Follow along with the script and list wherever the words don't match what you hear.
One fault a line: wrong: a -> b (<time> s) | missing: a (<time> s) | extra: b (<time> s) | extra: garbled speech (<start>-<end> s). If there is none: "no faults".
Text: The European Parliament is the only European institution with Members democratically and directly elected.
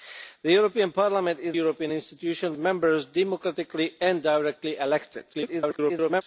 missing: the only (1.6 s)
missing: with (2.5 s)
extra: garbled speech (5.3-6.2 s)